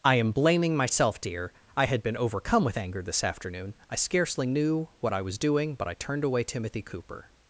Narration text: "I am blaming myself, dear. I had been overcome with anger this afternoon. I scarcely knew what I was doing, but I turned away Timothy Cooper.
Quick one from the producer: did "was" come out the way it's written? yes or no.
yes